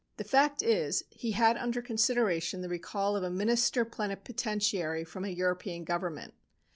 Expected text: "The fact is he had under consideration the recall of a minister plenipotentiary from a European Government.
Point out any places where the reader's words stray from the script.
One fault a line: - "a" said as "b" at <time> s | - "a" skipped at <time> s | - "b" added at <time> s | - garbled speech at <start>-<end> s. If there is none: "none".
none